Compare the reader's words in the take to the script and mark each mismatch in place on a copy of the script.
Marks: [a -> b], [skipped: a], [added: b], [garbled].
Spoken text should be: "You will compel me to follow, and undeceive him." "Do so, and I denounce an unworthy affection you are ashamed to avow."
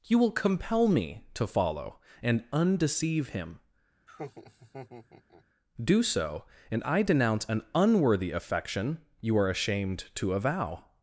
"You will compel me to follow, and undeceive him." "Do so, and I denounce an unworthy affection you are ashamed to avow."